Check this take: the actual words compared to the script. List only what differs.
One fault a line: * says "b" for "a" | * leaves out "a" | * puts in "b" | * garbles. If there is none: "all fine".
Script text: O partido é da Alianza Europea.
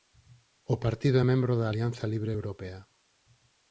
* puts in "membro"
* puts in "Libre"